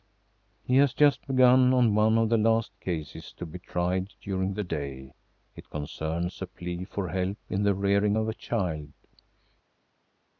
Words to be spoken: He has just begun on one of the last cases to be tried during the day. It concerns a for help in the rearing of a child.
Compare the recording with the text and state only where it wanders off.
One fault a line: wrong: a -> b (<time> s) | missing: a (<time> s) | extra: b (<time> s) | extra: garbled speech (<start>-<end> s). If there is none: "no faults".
extra: plea (6.5 s)